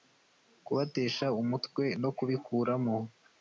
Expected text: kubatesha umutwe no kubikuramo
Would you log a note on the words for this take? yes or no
no